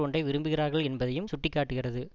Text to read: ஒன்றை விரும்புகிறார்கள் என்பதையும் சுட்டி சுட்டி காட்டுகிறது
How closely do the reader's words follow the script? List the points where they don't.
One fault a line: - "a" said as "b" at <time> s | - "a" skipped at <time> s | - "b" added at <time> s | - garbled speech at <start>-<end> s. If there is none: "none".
- "சுட்டி" skipped at 1.5 s